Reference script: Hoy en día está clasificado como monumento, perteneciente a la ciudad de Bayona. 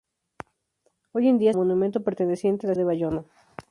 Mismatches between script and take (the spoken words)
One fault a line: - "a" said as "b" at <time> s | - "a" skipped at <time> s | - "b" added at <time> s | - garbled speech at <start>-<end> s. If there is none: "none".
- "está clasificado como" skipped at 1.5 s
- "ciudad" skipped at 2.7 s